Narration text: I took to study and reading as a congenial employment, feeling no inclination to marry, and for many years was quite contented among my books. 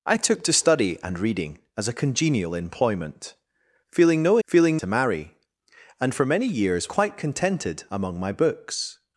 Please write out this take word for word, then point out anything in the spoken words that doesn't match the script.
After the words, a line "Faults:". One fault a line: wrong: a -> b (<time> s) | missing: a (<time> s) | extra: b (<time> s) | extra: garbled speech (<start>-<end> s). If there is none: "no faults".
I took to study and reading as a congenial employment, feeling no feeling to marry, and for many years quite contented among my books.
Faults:
wrong: inclination -> feeling (4.5 s)
missing: was (6.9 s)